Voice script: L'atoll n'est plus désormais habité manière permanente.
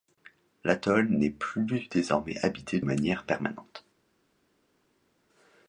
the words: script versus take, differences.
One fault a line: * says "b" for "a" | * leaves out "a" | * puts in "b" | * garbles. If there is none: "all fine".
all fine